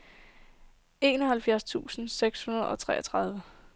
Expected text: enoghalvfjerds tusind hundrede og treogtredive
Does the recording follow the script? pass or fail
fail